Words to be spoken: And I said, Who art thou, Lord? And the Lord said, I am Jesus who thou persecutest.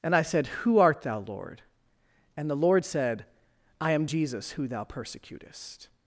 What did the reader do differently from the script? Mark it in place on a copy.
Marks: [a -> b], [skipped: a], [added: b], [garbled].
And I said, Who art thou, Lord? And the Lord said, I am Jesus who thou persecutest.